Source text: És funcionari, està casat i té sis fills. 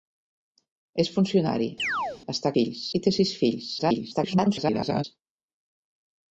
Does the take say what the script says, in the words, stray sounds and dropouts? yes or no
no